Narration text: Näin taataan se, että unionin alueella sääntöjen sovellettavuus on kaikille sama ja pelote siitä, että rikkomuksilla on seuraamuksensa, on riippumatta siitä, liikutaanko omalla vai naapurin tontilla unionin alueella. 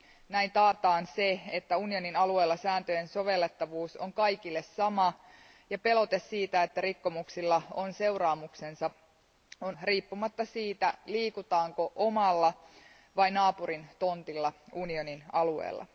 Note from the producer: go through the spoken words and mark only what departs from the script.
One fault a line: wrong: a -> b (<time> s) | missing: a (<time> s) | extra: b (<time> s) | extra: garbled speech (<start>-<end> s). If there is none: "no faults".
no faults